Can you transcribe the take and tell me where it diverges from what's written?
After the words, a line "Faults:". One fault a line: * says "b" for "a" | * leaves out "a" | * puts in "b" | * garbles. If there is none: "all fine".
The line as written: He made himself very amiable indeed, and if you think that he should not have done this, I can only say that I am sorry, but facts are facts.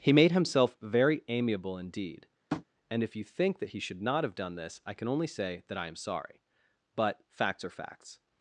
He made himself very amiable indeed, and if you think that he should not have done this, I can only say that I am sorry, but facts are facts.
Faults:
all fine